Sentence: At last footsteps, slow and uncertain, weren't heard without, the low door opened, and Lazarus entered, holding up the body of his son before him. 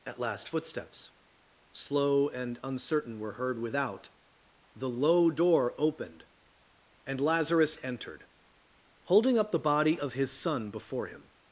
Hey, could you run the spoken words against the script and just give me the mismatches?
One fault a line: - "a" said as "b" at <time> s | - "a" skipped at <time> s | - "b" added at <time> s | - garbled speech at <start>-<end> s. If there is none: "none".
- "weren't" said as "were" at 3.2 s